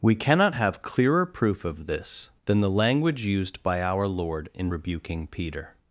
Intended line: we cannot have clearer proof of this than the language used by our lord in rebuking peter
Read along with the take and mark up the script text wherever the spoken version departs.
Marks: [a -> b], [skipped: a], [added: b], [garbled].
we cannot have clearer proof of this than the language used by our lord in rebuking peter